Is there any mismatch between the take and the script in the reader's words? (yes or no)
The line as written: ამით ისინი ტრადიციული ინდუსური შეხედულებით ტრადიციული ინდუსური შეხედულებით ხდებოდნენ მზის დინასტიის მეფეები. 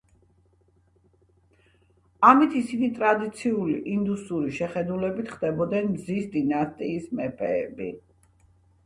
yes